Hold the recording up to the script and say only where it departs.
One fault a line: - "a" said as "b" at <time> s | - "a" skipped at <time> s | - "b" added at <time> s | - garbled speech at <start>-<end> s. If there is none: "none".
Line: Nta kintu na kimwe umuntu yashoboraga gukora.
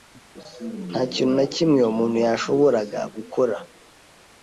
none